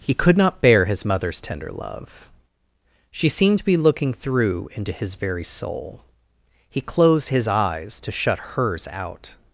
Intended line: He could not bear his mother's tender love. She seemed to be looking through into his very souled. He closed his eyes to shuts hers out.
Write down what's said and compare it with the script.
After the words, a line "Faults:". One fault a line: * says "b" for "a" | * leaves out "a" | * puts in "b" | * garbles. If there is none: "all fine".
He could not bear his mother's tender love. She seemed to be looking through into his very soul. He closed his eyes to shut hers out.
Faults:
* says "soul" for "souled"
* says "shut" for "shuts"